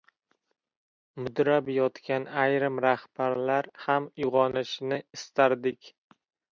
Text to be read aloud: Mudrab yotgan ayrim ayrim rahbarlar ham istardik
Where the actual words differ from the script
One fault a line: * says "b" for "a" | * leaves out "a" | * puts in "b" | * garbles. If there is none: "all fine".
* leaves out "ayrim"
* puts in "uyg‘onishini"